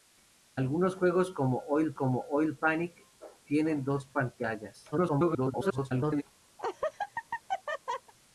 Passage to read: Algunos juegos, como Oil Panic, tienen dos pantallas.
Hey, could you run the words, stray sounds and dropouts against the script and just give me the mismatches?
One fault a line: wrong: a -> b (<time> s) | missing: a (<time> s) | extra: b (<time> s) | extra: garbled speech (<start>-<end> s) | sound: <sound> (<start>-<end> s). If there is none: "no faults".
extra: como Oil (1.9 s)
extra: garbled speech (4.9-6.2 s)
sound: laugh (6.6-8.1 s)